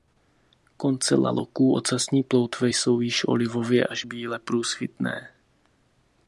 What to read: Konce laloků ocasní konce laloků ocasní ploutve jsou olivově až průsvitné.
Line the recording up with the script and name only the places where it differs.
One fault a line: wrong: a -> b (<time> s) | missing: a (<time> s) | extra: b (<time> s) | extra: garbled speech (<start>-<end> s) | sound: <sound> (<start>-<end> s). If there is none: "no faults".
missing: konce laloků ocasní (2.2 s)
extra: již (3.0 s)
extra: bíle (4.0 s)